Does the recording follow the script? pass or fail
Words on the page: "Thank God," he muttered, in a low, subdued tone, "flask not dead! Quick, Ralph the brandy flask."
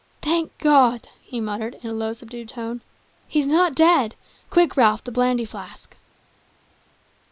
fail